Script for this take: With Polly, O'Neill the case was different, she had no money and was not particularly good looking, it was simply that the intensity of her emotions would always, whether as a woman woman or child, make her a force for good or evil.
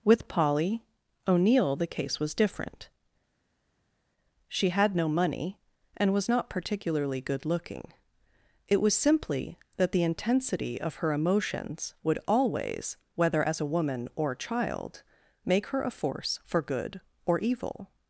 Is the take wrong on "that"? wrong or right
right